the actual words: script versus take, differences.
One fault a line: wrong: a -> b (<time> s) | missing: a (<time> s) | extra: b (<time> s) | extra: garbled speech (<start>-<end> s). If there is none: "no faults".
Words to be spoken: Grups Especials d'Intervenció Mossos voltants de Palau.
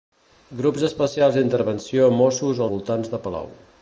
no faults